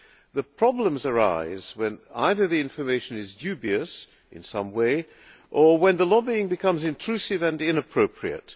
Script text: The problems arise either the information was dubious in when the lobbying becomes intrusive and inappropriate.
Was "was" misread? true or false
true